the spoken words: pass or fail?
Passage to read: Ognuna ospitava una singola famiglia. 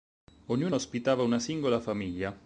pass